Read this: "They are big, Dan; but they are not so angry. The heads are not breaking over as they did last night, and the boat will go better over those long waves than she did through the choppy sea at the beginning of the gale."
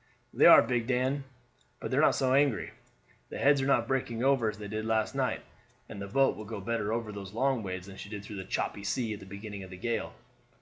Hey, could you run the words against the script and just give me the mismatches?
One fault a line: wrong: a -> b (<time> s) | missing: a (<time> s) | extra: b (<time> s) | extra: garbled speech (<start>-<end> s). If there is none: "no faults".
no faults